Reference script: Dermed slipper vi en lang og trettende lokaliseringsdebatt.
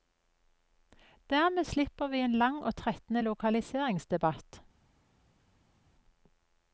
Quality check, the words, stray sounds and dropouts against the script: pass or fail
pass